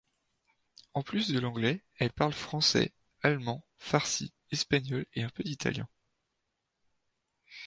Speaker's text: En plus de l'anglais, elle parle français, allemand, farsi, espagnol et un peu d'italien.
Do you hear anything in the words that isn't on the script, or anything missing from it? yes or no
no